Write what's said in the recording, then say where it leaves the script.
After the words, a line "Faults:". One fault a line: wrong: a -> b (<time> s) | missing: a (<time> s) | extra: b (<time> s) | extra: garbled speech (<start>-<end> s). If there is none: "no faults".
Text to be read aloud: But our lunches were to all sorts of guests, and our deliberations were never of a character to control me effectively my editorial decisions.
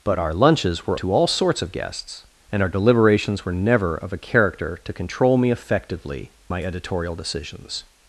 But our lunches were to all sorts of guests, and our deliberations were never of a character to control me effectively my editorial decisions.
Faults:
no faults